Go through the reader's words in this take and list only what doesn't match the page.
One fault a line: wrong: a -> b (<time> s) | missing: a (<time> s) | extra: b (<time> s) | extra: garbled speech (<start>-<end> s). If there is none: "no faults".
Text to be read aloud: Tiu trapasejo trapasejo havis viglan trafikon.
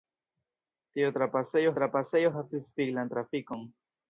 no faults